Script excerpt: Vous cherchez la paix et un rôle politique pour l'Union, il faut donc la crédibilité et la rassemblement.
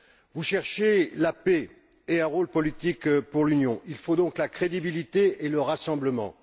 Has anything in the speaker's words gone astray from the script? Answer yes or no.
yes